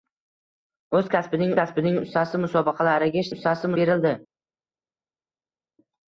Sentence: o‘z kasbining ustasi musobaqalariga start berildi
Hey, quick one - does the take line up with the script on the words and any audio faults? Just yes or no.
no